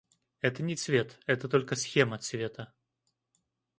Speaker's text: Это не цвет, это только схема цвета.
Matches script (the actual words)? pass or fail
pass